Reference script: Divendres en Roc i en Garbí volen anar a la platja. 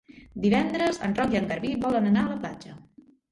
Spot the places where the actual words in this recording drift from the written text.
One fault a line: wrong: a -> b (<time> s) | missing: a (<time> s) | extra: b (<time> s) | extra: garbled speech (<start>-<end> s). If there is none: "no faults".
no faults